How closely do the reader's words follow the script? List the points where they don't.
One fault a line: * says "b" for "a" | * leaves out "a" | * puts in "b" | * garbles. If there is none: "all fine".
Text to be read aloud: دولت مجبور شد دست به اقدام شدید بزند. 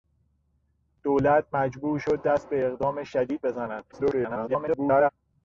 * garbles